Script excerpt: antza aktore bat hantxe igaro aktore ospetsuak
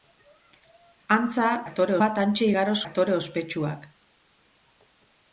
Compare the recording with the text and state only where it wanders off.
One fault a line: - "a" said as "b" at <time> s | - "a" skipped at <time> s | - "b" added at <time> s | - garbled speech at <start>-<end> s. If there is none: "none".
none